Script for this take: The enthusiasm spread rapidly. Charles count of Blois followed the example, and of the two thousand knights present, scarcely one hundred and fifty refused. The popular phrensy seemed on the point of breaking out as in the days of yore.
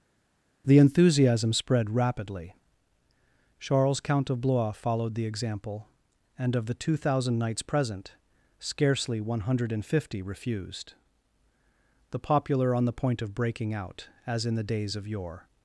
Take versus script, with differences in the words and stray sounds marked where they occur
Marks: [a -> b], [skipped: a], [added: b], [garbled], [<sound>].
The enthusiasm spread rapidly. Charles count of Blois followed the example, and of the two thousand knights present, scarcely one hundred and fifty refused. The popular [skipped: phrensy seemed] on the point of breaking out as in the days of yore.